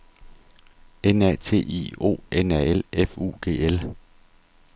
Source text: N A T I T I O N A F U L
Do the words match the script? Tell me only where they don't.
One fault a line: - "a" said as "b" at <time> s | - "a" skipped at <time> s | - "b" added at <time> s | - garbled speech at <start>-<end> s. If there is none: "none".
- "T I" skipped at 1.9 s
- "L" added at 2.7 s
- "G" added at 3.4 s